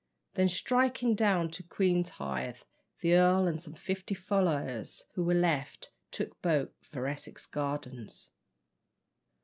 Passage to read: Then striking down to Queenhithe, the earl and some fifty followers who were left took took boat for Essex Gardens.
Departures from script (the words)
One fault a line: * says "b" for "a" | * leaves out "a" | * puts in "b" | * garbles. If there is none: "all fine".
* leaves out "took"